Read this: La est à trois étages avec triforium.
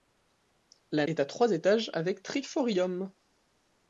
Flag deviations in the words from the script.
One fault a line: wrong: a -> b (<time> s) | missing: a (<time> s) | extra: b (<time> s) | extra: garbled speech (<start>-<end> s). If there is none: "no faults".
no faults